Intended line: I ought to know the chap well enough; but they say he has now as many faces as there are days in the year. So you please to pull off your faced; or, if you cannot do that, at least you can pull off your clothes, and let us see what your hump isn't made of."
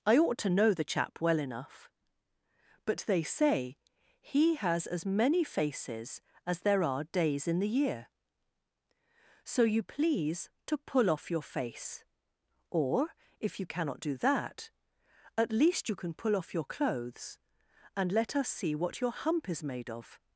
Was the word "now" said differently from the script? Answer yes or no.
yes